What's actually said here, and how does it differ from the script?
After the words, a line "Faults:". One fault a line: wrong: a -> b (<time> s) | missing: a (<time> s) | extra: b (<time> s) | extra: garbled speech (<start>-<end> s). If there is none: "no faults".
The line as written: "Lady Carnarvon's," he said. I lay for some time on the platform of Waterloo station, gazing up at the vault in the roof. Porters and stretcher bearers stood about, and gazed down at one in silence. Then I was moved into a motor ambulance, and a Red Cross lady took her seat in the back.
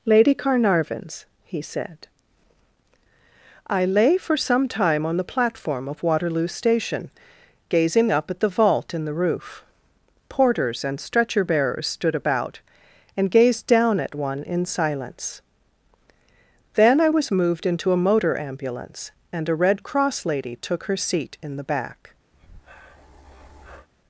"Lady Carnarvon's," he said. I lay for some time on the platform of Waterloo station, gazing up at the vault in the roof. Porters and stretcher bearers stood about, and gazed down at one in silence. Then I was moved into a motor ambulance, and a Red Cross lady took her seat in the back.
Faults:
no faults